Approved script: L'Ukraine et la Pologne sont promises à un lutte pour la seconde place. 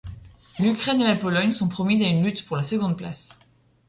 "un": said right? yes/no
no